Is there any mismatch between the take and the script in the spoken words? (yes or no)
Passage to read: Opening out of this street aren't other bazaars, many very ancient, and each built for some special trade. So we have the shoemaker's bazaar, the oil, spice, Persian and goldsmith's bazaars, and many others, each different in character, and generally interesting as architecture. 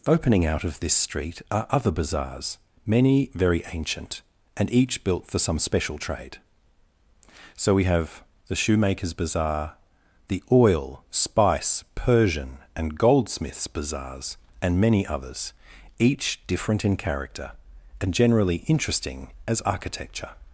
yes